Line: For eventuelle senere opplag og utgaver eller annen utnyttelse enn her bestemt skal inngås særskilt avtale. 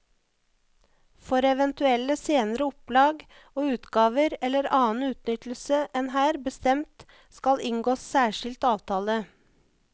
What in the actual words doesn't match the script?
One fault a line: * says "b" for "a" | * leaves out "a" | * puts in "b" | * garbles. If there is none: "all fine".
all fine